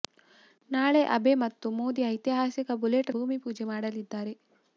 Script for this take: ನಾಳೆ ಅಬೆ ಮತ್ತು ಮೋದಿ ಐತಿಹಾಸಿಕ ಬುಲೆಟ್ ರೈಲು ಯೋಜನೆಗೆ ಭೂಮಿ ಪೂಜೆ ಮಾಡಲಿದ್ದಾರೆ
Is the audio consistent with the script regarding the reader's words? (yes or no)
no